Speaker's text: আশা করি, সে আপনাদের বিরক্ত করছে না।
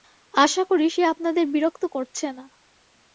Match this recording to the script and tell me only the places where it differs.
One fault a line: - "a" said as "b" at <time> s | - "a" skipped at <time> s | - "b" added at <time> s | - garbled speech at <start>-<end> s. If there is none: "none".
none